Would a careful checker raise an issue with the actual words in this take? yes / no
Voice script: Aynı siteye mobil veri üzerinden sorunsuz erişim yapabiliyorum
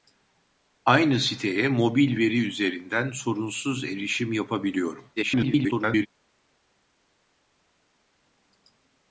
yes